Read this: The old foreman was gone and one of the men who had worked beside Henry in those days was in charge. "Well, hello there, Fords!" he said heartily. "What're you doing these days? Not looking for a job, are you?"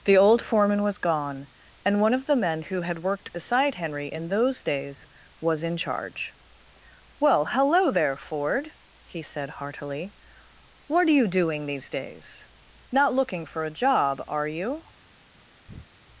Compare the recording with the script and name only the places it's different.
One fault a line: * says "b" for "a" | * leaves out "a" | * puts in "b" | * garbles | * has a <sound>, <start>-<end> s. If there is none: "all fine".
* says "Ford" for "Fords"
* has a breath, 15.7-15.9 s